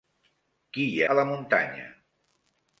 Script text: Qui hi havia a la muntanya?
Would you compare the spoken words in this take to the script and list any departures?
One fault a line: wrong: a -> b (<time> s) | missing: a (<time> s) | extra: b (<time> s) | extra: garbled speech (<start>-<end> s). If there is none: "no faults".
missing: havia (1.0 s)